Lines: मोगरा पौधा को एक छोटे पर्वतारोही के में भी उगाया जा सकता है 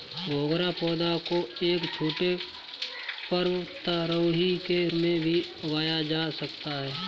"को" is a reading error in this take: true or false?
false